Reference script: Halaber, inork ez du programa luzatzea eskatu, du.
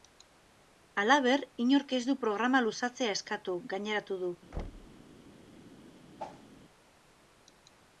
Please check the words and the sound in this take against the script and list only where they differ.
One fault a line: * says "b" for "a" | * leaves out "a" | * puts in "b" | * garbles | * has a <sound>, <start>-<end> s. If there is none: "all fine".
* puts in "gaineratu"
* has a thud, 4.5-5.0 s
* has a whoosh, 6.2-6.5 s